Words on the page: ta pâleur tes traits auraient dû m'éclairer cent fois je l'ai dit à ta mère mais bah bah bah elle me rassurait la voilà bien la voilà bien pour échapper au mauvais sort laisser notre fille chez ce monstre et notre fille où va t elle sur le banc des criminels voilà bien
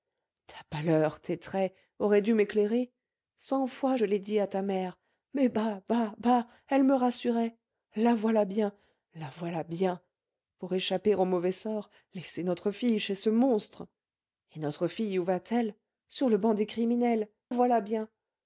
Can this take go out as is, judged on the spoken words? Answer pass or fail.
pass